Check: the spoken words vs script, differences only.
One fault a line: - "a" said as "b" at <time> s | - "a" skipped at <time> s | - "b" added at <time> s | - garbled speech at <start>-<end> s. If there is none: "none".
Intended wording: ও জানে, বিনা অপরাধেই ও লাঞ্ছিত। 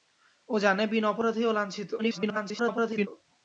- garbled speech at 2.0-3.1 s